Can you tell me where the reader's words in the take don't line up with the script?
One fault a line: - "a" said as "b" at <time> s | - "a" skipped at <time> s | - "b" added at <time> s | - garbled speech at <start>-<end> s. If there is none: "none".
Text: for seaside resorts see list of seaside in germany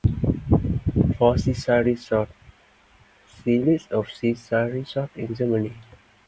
- "resorts" added at 4.7 s